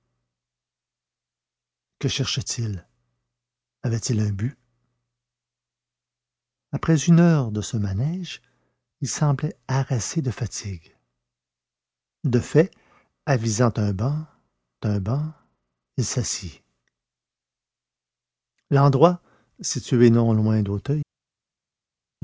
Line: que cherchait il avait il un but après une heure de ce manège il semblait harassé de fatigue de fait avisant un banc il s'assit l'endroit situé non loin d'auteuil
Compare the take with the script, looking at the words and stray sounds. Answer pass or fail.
fail